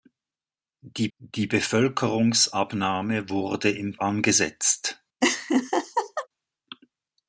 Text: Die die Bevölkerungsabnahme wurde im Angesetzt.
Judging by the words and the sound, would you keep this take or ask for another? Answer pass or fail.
fail